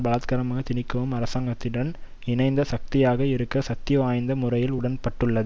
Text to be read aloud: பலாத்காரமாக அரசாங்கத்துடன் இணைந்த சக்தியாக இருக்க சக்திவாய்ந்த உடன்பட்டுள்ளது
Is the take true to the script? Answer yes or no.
no